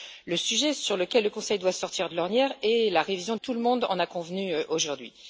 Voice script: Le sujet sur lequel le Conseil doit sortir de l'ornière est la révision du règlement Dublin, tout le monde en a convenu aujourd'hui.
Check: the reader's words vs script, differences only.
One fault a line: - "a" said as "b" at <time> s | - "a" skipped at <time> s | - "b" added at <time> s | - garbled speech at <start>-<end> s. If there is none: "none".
- "du règlement Dublin" skipped at 3.4 s